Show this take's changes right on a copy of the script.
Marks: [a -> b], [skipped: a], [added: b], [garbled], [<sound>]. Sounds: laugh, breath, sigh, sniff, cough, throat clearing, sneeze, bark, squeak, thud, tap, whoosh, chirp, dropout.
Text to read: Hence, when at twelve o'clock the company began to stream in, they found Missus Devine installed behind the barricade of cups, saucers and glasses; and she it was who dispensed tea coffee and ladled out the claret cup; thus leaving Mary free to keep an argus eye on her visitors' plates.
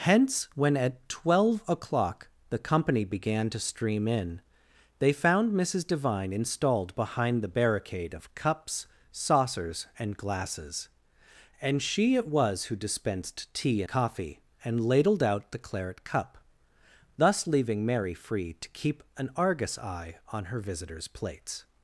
Hence, when at twelve o'clock the company began to stream in, they found Missus Devine installed behind the barricade of cups, saucers and glasses; and she it was who dispensed tea coffee and ladled out the claret cup; thus leaving Mary free to keep an argus eye on her visitors' plates.